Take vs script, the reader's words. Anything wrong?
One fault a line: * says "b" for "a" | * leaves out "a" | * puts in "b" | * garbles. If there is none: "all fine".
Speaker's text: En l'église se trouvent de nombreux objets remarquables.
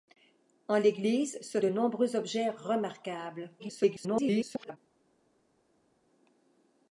* leaves out "trouvent"
* garbles